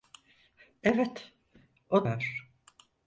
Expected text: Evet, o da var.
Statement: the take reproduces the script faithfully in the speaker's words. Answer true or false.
false